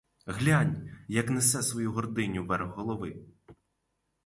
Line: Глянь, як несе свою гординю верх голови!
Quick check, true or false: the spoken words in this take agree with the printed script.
true